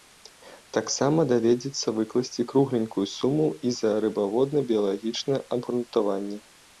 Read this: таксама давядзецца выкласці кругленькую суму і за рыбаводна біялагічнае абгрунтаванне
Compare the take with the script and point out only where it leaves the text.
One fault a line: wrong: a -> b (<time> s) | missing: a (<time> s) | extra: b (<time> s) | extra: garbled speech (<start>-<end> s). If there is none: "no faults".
no faults